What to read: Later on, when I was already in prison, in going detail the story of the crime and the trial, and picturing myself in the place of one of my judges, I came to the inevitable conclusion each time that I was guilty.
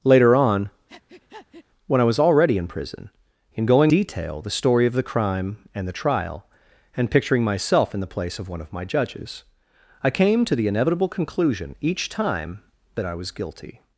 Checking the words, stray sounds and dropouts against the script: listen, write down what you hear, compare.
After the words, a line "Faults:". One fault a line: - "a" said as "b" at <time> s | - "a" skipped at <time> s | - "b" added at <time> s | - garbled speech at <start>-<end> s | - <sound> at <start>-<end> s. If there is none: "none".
Later on, when I was already in prison, in going detail the story of the crime and the trial, and picturing myself in the place of one of my judges, I came to the inevitable conclusion each time that I was guilty.
Faults:
- breath at 0.9-1.7 s